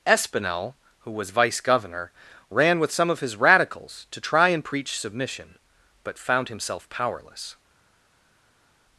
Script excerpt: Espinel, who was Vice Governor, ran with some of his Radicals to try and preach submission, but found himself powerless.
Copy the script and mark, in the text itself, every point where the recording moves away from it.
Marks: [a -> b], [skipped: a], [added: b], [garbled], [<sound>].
Espinel, who was Vice Governor, ran with some of his Radicals to try and preach submission, but found himself powerless.